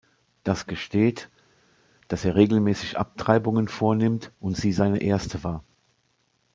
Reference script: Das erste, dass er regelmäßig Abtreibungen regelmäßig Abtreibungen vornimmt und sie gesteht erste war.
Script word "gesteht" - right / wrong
wrong